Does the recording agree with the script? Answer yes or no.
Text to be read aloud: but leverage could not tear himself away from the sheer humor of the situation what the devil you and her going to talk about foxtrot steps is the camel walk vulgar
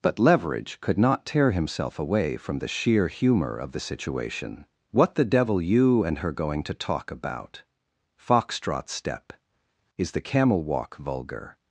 no